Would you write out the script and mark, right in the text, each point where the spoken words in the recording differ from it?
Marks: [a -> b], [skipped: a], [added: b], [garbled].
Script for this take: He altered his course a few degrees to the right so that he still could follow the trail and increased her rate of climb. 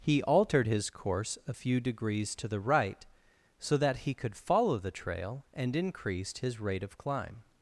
He altered his course a few degrees to the right so that he [skipped: still] could follow the trail and increased [her -> his] rate of climb.